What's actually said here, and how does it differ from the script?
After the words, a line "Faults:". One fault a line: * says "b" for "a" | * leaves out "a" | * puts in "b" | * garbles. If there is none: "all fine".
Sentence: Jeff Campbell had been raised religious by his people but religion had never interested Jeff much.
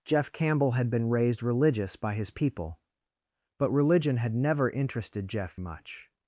Jeff Campbell had been raised religious by his people but religion had never interested Jeff much.
Faults:
all fine